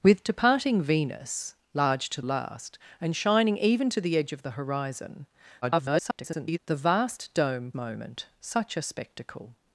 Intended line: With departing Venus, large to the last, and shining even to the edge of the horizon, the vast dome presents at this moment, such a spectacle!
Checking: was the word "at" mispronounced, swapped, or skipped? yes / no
yes